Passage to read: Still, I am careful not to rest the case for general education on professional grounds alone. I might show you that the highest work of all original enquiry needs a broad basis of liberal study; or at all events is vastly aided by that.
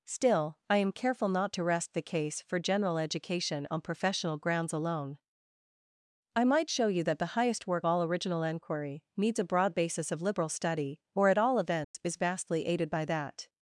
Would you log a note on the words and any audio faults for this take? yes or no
yes